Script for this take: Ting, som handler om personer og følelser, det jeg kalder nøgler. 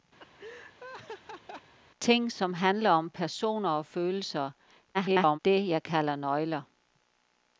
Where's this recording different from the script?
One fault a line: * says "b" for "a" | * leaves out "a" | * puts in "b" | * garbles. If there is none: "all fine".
* garbles